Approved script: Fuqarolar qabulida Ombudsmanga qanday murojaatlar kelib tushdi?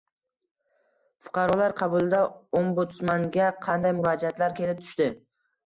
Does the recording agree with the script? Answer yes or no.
yes